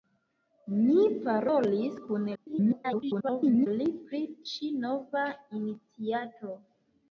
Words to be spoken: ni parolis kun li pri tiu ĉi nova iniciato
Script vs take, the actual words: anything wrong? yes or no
yes